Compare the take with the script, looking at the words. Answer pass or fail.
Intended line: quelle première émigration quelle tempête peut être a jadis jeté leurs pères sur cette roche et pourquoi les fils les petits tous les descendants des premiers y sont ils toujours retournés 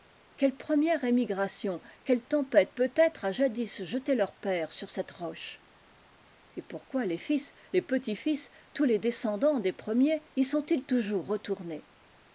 fail